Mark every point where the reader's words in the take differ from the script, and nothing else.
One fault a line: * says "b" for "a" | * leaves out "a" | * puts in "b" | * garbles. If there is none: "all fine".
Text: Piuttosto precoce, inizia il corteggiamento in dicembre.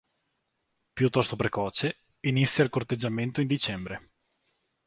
all fine